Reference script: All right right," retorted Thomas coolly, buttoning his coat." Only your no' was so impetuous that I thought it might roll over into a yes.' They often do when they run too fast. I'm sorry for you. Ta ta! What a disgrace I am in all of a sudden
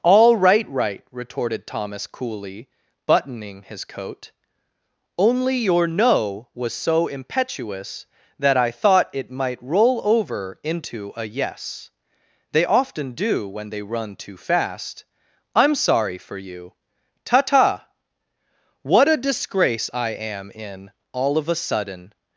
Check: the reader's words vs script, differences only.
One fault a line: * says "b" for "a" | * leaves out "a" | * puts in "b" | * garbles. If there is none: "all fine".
all fine